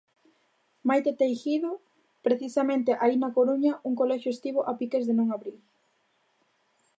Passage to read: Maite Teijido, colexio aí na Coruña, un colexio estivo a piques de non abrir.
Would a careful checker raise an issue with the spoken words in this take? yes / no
yes